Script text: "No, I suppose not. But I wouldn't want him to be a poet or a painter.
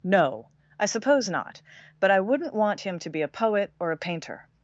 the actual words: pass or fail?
pass